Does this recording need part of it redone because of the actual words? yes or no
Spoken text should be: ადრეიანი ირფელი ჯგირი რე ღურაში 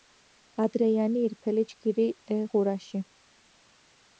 no